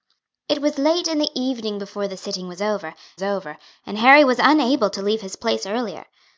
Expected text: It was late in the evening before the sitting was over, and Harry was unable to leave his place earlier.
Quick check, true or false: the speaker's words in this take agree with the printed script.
false